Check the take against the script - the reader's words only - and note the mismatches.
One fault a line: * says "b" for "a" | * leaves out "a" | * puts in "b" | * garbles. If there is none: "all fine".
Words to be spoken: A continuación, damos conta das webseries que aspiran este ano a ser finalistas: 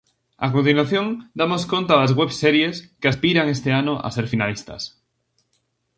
all fine